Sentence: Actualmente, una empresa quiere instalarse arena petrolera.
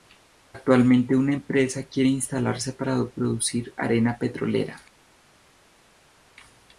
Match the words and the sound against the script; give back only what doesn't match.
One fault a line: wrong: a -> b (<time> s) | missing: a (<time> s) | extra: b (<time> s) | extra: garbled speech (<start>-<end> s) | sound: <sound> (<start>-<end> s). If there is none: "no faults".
extra: para producir (2.7 s)